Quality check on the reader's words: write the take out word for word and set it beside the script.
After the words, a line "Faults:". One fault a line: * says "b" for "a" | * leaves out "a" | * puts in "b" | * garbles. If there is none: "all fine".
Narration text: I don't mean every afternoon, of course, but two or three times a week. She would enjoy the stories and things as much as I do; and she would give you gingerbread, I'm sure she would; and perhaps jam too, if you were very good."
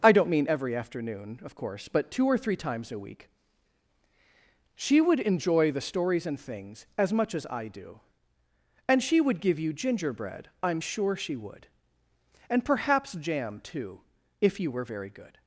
I don't mean every afternoon, of course, but two or three times a week. She would enjoy the stories and things as much as I do; and she would give you gingerbread, I'm sure she would; and perhaps jam too, if you were very good."
Faults:
all fine